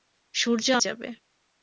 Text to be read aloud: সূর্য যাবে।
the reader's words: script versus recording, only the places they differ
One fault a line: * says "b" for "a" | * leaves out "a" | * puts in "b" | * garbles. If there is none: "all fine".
all fine